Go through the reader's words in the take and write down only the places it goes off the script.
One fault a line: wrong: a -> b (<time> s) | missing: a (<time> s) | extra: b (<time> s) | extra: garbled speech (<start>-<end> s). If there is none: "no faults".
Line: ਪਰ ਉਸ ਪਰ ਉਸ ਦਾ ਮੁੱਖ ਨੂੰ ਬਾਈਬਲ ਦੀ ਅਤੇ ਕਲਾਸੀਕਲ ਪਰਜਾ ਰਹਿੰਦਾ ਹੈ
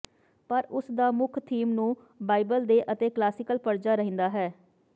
missing: ਪਰ ਉਸ (0.8 s)
extra: ਥੀਮ (1.4 s)
wrong: ਦੀ -> ਦੇ (2.6 s)